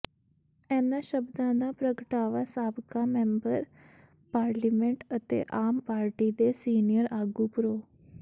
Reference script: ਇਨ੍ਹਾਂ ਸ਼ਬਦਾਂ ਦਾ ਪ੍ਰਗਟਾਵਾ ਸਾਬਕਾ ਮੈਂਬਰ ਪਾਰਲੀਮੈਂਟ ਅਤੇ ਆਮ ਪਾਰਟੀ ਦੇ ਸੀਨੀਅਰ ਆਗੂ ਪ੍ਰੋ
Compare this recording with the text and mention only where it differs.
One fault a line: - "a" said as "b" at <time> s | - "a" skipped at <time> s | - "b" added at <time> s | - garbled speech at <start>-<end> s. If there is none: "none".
none